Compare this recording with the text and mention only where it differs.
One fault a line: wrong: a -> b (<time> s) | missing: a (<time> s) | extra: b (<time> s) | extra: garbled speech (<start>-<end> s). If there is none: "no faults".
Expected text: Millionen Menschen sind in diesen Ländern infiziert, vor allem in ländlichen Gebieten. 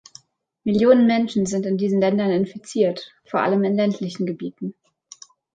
no faults